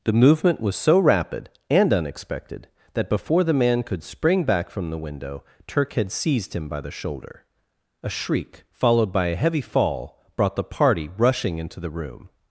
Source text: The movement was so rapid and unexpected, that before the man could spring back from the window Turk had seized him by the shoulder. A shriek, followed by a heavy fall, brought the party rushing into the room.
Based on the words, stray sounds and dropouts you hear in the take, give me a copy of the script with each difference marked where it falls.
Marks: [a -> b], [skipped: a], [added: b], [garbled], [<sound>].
The movement was so rapid and unexpected, that before the man could spring back from the window Turk had seized him by the shoulder. A shriek, followed by a heavy fall, brought the party rushing into the room.